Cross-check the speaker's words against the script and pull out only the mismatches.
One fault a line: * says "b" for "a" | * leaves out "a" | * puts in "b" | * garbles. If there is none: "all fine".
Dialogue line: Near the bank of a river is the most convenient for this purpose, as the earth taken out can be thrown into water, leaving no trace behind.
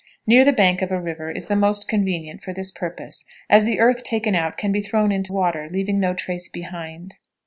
all fine